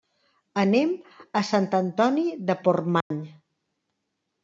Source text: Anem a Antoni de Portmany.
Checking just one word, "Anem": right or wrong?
right